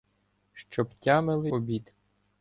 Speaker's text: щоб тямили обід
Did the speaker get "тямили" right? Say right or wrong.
right